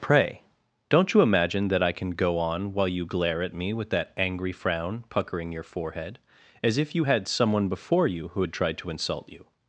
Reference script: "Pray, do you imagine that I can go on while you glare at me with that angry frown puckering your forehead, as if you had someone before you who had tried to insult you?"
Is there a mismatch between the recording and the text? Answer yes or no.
yes